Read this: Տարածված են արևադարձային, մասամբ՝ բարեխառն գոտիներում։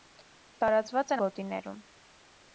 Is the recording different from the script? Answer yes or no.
yes